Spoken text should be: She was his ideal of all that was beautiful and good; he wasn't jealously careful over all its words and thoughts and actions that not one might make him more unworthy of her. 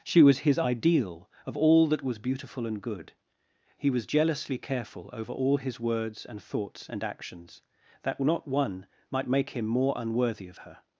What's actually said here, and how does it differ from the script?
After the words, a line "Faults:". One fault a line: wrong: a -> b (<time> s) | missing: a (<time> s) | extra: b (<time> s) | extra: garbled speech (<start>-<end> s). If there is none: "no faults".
She was his ideal of all that was beautiful and good; he was jealously careful over all his words and thoughts and actions that not one might make him more unworthy of her.
Faults:
wrong: wasn't -> was (3.9 s)
wrong: its -> his (5.6 s)